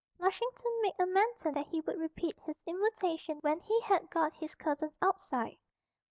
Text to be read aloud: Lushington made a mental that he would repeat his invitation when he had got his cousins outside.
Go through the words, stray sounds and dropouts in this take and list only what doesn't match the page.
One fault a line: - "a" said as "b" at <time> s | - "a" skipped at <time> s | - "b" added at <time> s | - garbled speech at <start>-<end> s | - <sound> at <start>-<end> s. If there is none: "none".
none